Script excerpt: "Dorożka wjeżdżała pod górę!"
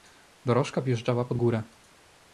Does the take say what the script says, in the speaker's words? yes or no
yes